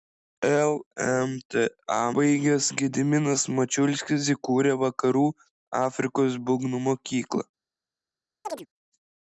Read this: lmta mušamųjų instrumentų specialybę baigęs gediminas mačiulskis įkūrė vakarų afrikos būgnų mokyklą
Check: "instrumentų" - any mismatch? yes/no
yes